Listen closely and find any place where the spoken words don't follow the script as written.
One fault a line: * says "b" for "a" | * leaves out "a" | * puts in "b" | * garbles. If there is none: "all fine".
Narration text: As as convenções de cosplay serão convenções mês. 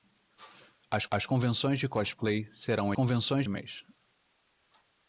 all fine